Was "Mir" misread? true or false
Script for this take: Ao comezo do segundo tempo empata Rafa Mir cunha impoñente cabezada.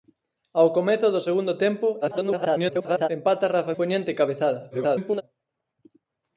true